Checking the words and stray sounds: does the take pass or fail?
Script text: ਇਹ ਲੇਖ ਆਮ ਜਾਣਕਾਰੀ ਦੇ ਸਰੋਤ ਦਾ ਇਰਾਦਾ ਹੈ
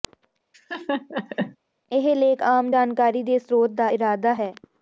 fail